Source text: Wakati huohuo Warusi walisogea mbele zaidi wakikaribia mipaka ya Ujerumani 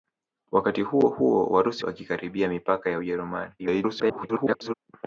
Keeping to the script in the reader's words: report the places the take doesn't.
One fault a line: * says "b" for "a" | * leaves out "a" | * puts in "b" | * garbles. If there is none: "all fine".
* leaves out "walisogea mbele zaidi"
* garbles